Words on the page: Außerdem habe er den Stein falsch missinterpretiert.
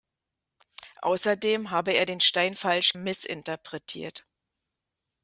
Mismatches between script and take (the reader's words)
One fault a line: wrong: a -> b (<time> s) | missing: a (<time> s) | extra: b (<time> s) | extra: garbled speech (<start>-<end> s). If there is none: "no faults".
no faults